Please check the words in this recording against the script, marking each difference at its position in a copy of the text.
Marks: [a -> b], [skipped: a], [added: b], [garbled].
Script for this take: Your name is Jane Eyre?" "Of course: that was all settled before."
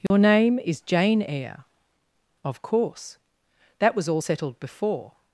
Your name is Jane Eyre?" "Of course: that was all settled before."